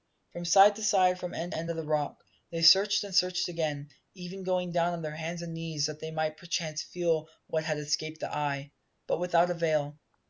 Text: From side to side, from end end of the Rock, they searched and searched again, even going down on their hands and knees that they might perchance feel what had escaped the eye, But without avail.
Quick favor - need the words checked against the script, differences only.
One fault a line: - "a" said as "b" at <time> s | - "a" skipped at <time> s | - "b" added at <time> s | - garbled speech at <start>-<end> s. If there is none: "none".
none